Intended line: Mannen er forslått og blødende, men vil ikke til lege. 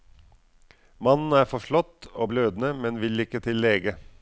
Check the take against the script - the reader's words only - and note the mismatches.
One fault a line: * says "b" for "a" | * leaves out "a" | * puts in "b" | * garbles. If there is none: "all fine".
all fine